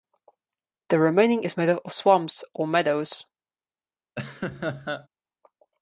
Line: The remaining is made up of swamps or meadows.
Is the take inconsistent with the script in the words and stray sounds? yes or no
yes